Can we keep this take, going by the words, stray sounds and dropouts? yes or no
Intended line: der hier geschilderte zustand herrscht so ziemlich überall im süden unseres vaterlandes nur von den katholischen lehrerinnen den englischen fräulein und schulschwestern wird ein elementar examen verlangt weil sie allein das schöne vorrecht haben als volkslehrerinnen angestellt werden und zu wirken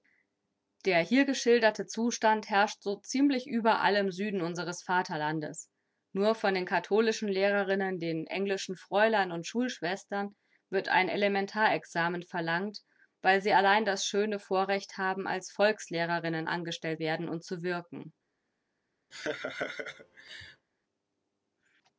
no